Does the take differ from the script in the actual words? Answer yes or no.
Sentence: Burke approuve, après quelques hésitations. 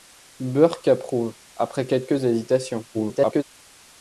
yes